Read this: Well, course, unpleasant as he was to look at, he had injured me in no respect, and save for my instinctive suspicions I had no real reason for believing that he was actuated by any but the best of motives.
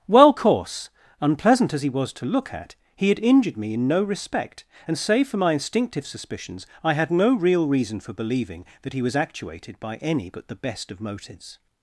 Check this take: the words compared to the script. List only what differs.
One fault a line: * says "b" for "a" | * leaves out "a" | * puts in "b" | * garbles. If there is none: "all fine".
all fine